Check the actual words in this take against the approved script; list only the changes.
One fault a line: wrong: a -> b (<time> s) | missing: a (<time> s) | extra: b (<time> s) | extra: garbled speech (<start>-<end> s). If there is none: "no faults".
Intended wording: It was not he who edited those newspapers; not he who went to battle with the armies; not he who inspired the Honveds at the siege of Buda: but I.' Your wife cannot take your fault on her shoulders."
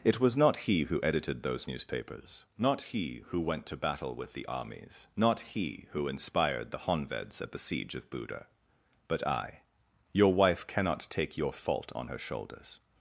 no faults